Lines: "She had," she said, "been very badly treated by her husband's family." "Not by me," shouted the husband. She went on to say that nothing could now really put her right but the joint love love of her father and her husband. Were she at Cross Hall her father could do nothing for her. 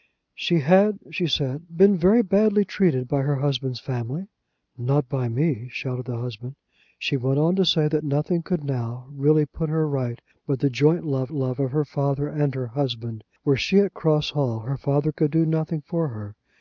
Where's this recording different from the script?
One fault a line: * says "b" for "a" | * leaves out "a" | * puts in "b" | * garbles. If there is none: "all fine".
all fine